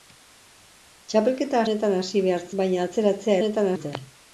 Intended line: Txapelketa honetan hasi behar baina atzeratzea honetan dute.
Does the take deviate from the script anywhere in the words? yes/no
no